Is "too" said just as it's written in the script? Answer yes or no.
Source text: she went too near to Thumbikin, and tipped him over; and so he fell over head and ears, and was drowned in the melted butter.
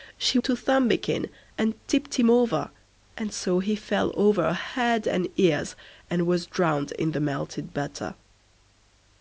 no